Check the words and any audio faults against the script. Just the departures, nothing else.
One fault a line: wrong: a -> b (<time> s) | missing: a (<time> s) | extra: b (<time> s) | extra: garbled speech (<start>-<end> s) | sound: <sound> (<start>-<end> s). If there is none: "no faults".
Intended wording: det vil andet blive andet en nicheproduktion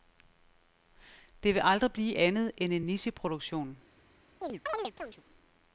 wrong: andet -> aldrig (1.6 s)
extra: end (2.6 s)
sound: chirp (4.4-5.2 s)